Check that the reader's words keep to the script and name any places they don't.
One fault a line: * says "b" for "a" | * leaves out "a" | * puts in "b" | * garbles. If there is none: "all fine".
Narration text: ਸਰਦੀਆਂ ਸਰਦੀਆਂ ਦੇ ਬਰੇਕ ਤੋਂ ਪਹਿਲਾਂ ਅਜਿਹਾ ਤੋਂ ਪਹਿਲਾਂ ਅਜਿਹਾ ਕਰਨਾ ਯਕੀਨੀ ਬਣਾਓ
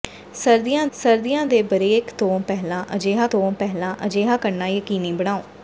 all fine